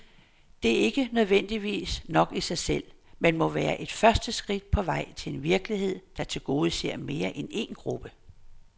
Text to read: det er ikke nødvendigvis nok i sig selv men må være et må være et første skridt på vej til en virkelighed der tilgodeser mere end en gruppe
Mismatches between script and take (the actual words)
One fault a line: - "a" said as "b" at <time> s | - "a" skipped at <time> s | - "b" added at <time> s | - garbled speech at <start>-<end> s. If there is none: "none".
- "må være et" skipped at 3.9 s